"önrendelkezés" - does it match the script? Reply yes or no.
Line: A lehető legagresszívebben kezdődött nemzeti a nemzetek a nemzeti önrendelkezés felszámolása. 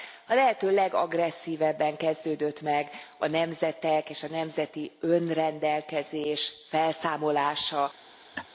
yes